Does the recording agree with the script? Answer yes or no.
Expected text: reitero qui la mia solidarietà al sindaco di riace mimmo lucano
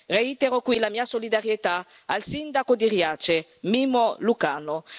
yes